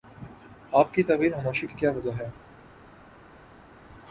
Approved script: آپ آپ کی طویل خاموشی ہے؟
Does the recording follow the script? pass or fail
fail